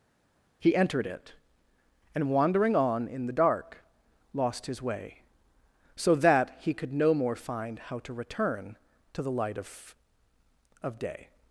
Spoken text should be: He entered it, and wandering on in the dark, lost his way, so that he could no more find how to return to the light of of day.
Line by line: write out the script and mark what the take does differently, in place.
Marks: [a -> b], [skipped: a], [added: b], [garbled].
He entered it, and wandering on in the dark, lost his way, so that he could no more find how to return to the light of of day.